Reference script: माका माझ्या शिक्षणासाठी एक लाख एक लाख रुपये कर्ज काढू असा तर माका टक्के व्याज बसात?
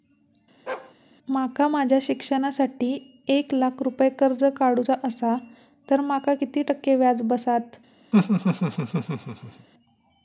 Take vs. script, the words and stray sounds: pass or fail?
fail